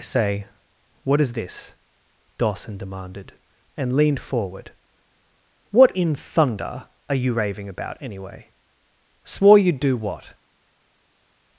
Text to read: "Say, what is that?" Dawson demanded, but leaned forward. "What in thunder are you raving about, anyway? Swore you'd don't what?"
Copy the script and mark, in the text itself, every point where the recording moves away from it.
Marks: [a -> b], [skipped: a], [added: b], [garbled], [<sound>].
"Say, what is [that?" -> this] Dawson demanded, [but -> and] leaned forward. "What in thunder are you raving about, anyway? Swore you'd [don't -> do] what?"